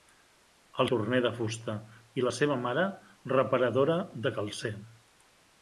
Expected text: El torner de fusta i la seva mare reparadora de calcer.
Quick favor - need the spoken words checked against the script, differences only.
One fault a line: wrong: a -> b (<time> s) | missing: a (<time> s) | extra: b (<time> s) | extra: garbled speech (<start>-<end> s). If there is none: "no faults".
no faults